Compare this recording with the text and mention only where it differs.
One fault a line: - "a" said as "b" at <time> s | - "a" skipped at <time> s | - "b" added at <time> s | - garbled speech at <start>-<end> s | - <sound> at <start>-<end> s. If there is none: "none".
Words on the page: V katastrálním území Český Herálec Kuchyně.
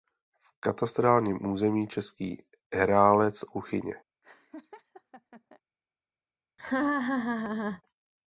- laugh at 4.2-5.6 s
- laugh at 6.6-7.8 s